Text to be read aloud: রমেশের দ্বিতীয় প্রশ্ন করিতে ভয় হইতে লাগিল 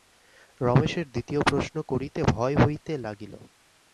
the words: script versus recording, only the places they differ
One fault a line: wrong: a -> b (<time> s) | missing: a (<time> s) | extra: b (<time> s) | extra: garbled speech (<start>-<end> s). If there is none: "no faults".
no faults